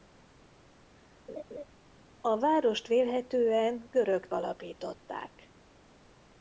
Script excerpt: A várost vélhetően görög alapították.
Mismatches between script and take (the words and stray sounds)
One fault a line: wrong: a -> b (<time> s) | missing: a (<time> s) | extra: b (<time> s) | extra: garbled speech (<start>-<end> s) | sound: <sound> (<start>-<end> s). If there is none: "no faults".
sound: laugh (1.3-1.6 s)